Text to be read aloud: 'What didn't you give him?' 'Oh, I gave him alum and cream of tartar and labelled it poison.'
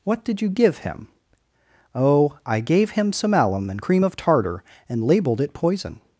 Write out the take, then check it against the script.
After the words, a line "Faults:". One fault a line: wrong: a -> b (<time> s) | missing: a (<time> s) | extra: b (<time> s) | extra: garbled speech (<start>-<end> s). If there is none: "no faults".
'What did you give him?' 'Oh, I gave him some alum and cream of tartar and labelled it poison.'
Faults:
wrong: didn't -> did (0.2 s)
extra: some (3.1 s)